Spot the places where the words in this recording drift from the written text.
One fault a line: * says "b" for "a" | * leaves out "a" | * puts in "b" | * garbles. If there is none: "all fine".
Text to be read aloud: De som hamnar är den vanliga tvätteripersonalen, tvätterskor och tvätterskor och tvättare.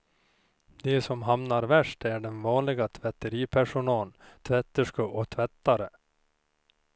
* puts in "värst"
* leaves out "tvätterskor och"